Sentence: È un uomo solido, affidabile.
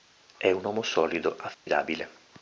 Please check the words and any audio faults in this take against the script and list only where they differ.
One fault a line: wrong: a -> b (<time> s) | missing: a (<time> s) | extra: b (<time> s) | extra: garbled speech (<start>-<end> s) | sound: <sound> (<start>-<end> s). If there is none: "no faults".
sound: dropout (1.5-1.7 s)